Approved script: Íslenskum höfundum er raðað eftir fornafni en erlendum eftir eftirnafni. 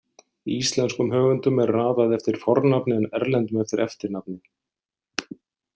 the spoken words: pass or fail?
pass